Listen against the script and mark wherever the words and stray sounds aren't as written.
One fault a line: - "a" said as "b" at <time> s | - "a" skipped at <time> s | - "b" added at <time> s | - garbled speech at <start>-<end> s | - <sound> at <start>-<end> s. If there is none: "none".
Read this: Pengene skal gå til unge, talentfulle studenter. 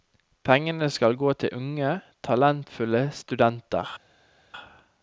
none